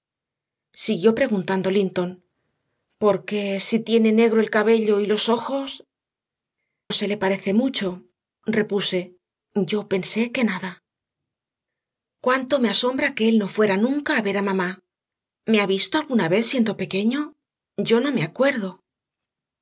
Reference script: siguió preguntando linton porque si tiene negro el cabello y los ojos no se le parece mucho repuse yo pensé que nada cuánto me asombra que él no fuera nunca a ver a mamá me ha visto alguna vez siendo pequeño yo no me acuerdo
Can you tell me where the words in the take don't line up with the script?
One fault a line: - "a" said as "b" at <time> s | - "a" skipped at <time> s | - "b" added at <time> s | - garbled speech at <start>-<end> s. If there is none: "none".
- "no" skipped at 5.8 s